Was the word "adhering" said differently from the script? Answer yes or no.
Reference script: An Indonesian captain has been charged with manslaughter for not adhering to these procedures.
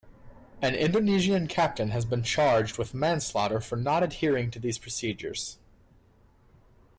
no